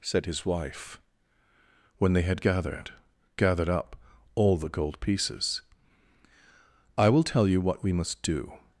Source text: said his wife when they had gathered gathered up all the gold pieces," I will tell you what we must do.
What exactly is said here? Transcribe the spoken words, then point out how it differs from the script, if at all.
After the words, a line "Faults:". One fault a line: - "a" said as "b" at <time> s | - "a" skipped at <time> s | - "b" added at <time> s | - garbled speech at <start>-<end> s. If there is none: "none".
said his wife when they had gathered gathered up all the gold pieces," I will tell you what we must do.
Faults:
none